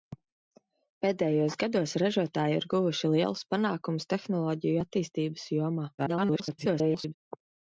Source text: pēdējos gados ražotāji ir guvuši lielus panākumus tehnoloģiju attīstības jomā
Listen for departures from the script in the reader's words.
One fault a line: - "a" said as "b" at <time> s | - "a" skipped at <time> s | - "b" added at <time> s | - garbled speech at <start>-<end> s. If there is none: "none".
- garbled speech at 6.0-7.1 s